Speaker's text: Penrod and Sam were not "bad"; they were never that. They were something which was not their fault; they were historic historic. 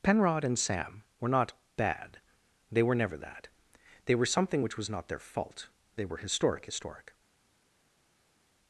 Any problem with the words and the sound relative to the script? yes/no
no